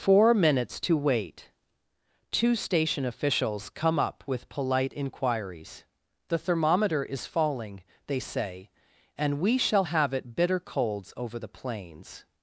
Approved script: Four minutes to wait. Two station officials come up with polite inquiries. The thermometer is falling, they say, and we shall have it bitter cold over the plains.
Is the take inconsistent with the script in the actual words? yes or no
yes